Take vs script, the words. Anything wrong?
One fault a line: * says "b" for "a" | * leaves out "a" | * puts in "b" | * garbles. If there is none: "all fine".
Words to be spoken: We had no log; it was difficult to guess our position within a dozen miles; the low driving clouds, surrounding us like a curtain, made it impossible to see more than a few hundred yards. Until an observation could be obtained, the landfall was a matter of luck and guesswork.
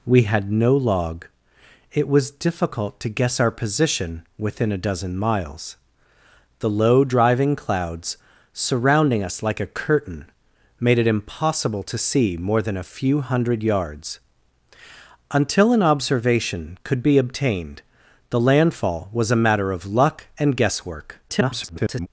* garbles